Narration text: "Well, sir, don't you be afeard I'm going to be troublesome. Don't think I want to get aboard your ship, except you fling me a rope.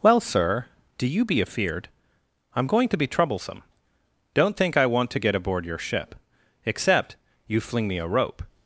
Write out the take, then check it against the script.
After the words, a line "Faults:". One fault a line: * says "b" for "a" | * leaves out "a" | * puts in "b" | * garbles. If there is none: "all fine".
"Well, sir, do you be afeard I'm going to be troublesome. Don't think I want to get aboard your ship, except you fling me a rope.
Faults:
* says "do" for "don't"